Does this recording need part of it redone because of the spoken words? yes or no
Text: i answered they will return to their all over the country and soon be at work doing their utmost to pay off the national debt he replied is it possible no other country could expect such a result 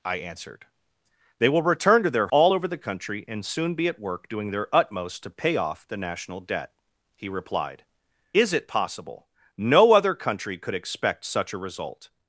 no